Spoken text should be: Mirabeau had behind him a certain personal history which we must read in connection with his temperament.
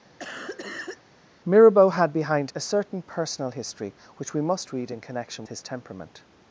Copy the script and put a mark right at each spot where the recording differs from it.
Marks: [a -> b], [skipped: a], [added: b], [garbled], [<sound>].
[cough] Mirabeau had behind [skipped: him] a certain personal history which we must read in connection [skipped: with] his temperament.